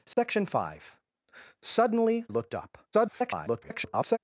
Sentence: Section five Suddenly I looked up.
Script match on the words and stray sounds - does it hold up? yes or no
no